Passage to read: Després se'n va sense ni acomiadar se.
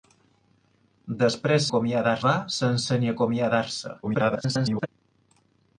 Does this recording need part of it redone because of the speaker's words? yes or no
yes